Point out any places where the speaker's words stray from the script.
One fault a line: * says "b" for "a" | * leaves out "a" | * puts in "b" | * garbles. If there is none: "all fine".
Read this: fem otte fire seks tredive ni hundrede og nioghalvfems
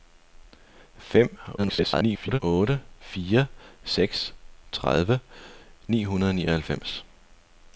* garbles